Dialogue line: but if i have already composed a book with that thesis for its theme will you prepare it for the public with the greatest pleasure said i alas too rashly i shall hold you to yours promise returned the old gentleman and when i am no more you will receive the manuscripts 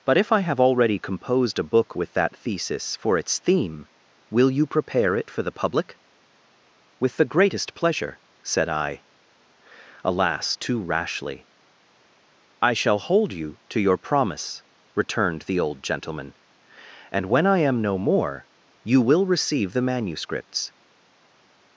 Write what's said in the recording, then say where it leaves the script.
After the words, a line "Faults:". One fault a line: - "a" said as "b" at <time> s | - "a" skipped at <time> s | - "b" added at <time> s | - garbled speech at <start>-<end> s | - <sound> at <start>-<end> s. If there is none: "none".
but if i have already composed a book with that thesis for its theme will you prepare it for the public with the greatest pleasure said i alas too rashly i shall hold you to your promise returned the old gentleman and when i am no more you will receive the manuscripts
Faults:
- "yours" said as "your" at 13.8 s